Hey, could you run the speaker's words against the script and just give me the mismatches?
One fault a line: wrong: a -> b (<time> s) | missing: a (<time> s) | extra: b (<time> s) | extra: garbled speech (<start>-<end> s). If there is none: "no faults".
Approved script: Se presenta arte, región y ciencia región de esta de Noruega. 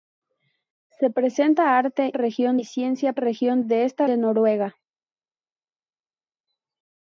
no faults